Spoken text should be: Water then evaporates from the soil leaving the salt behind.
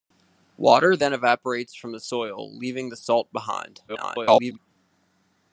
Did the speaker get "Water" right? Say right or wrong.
right